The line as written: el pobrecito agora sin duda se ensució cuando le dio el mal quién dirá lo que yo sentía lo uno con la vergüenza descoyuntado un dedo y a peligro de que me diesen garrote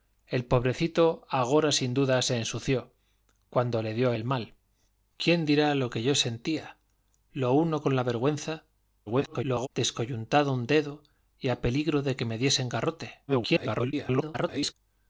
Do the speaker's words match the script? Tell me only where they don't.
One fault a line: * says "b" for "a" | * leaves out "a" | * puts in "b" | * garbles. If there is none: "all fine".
* garbles
* garbles